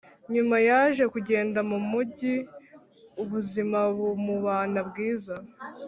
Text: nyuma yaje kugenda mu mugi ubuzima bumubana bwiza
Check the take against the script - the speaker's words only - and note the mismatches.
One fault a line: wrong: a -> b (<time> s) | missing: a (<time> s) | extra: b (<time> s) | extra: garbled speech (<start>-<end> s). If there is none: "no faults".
no faults